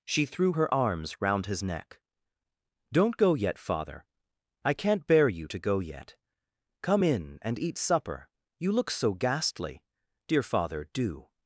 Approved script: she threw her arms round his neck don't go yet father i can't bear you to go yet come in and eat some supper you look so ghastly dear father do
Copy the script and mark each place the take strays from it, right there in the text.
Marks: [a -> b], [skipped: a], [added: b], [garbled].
she threw her arms round his neck don't go yet father i can't bear you to go yet come in and eat [skipped: some] supper you look so ghastly dear father do